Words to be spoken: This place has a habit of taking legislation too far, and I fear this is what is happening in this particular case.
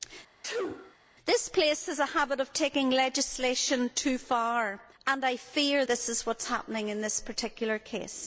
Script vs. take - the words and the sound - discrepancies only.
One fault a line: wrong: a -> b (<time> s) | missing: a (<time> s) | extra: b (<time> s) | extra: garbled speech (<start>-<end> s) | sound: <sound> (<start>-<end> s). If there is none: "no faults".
sound: sneeze (0.4-1.0 s)